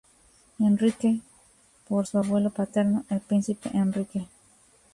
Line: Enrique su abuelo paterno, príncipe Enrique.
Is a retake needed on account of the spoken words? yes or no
yes